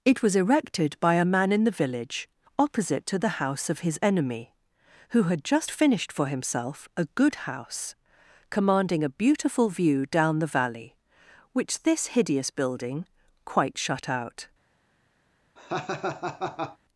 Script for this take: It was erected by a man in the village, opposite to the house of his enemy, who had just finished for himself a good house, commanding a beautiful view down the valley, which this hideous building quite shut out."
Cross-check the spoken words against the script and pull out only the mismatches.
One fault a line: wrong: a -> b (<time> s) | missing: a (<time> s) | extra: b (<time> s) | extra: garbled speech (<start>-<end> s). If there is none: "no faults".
no faults